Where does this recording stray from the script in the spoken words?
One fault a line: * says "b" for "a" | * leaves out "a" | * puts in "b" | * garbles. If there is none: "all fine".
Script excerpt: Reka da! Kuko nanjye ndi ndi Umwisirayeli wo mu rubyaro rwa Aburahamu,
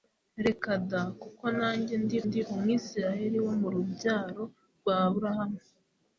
all fine